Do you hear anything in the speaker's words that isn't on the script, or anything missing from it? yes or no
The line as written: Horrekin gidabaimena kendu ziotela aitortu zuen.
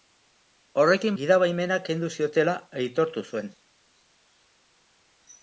no